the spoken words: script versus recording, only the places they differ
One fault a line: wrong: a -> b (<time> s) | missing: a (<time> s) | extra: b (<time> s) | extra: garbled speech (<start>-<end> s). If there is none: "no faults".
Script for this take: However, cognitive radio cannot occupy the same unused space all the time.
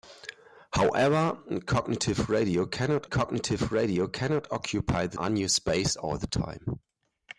extra: cognitive radio cannot (3.1 s)
missing: same (5.2 s)